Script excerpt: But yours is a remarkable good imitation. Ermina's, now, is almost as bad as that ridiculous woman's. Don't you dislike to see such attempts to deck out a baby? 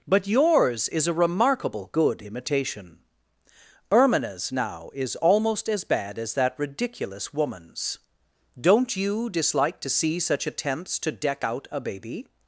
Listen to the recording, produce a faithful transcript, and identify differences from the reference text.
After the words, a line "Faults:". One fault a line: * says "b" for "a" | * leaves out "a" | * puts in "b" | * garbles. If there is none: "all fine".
But yours is a remarkable good imitation. Ermina's, now, is almost as bad as that ridiculous woman's. Don't you dislike to see such attempts to deck out a baby?
Faults:
all fine